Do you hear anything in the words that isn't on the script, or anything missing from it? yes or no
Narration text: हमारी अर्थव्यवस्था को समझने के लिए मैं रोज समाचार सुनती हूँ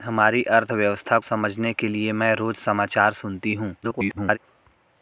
yes